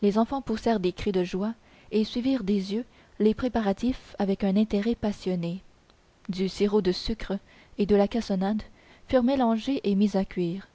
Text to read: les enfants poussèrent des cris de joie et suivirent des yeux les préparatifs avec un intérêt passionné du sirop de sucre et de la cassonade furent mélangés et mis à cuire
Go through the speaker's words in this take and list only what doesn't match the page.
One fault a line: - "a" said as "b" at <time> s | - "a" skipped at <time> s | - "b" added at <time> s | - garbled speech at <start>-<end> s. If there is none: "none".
none